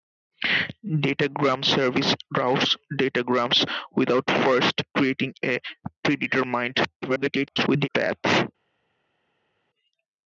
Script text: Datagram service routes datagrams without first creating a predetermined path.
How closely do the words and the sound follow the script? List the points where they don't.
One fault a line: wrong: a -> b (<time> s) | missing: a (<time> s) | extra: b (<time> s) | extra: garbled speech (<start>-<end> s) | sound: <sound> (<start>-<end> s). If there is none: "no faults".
extra: garbled speech (7.0-7.9 s)